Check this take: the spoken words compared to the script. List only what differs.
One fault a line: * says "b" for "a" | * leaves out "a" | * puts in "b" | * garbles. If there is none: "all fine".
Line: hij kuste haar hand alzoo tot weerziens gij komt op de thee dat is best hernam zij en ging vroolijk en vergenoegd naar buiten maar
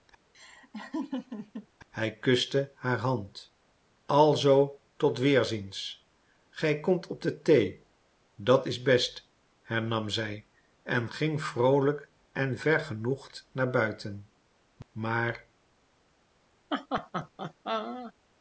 all fine